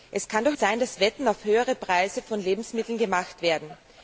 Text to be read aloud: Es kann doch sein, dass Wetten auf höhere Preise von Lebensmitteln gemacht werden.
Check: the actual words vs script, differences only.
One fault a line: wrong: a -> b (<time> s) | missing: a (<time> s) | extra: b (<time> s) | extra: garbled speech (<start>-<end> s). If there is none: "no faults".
no faults